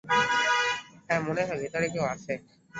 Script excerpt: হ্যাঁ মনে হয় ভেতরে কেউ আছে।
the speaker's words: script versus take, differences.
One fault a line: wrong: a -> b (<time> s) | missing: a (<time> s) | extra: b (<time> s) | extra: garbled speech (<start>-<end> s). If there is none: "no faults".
no faults